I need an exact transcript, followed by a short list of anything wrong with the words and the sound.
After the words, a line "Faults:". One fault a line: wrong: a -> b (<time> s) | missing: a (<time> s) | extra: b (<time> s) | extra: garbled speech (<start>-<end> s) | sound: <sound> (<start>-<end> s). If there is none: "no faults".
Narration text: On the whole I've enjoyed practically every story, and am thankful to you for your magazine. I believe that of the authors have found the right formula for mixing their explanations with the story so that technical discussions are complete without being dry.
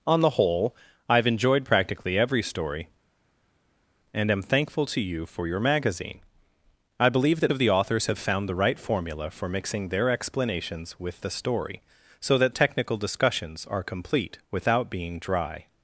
On the whole I've enjoyed practically every story, and am thankful to you for your magazine. I believe that of the authors have found the right formula for mixing their explanations with the story so that technical discussions are complete without being dry.
Faults:
no faults